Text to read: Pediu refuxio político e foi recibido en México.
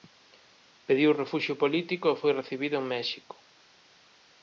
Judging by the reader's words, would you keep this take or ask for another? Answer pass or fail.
pass